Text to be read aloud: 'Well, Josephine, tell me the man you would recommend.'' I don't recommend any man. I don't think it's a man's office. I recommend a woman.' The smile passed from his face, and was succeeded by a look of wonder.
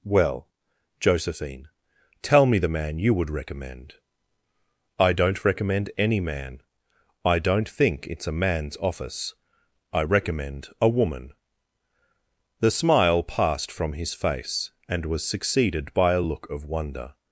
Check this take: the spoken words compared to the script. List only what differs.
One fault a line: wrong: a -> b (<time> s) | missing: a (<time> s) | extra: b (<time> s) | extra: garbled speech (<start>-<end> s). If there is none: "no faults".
no faults